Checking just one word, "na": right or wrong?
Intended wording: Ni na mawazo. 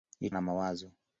right